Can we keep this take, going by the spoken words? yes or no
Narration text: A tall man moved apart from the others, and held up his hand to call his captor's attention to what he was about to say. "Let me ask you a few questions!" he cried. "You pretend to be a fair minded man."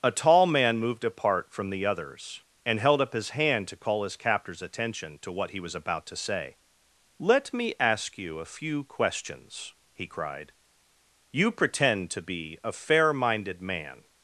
yes